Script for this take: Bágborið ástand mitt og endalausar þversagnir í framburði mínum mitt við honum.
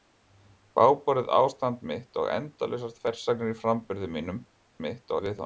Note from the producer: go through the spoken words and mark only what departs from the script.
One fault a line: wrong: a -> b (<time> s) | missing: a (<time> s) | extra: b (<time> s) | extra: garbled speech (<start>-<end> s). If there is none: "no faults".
no faults